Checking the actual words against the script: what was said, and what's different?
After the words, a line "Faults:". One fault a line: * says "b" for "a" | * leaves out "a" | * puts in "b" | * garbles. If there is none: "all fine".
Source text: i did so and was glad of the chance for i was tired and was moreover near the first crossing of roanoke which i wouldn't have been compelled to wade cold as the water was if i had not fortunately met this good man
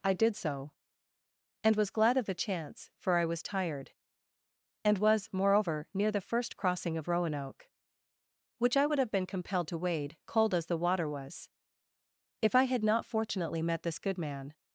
i did so and was glad of the chance for i was tired and was moreover near the first crossing of roanoke which i would have been compelled to wade cold as the water was if i had not fortunately met this good man
Faults:
* says "would" for "wouldn't"